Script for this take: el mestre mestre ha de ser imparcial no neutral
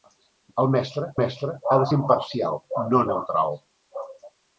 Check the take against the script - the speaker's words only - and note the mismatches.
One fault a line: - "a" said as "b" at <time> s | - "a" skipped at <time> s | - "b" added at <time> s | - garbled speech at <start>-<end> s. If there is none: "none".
none